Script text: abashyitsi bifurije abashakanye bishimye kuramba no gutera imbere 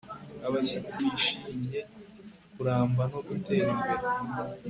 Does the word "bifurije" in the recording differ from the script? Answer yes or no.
yes